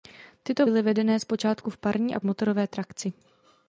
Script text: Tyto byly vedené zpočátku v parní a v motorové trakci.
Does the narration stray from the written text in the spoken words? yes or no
no